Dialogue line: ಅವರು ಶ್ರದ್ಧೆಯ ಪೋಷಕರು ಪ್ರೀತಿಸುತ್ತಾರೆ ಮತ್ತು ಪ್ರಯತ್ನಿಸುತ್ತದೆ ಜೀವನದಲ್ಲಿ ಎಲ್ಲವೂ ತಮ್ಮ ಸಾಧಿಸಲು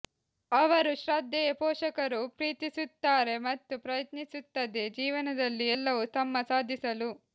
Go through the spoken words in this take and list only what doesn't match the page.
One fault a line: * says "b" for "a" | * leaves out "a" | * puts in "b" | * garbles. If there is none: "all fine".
all fine